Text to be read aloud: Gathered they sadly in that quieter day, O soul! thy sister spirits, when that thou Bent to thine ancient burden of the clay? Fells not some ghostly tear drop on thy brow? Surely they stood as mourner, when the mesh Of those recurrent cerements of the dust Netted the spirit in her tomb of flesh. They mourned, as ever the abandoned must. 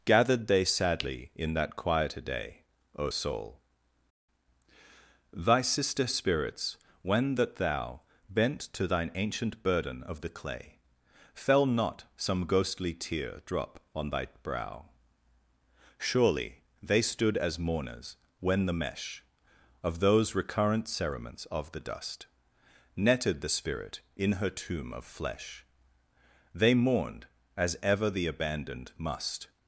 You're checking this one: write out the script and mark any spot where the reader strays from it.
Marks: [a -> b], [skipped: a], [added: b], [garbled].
Gathered they sadly in that quieter day, O soul! thy sister spirits, when that thou Bent to thine ancient burden of the clay? [Fells -> Fell] not some ghostly tear drop on thy brow? Surely they stood as [mourner, -> mourners] when the mesh Of those recurrent cerements of the dust Netted the spirit in her tomb of flesh. They mourned, as ever the abandoned must.